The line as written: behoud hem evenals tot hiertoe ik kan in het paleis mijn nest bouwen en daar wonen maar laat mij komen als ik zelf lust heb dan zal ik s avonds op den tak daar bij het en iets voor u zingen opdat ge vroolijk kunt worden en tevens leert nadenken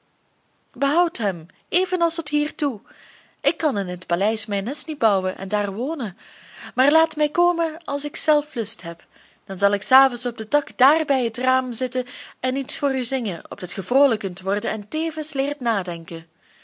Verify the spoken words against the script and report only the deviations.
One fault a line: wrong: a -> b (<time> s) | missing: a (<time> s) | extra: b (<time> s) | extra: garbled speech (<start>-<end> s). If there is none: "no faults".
extra: niet (4.9 s)
extra: raam zitten (11.4 s)